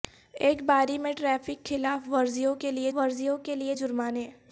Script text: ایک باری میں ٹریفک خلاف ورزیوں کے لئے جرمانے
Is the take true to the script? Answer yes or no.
no